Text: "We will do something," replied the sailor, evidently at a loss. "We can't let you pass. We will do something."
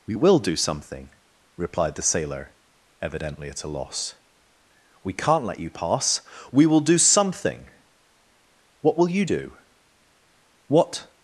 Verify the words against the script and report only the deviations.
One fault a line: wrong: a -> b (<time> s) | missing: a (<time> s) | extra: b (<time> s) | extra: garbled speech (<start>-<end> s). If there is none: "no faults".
extra: What will you do What (8.8 s)